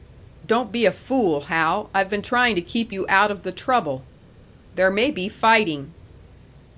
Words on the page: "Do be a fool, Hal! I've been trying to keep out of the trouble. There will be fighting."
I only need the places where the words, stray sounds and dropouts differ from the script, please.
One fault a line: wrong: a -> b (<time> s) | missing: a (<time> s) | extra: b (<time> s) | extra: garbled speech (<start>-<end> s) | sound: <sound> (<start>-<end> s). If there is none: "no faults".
wrong: Do -> Don't (0.5 s)
extra: you (2.9 s)
wrong: will -> may (4.9 s)